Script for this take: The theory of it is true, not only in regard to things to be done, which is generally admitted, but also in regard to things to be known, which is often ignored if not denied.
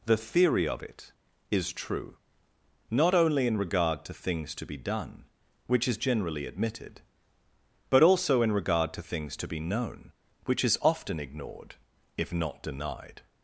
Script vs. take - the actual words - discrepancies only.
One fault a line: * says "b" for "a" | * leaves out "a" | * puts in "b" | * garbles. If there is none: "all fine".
all fine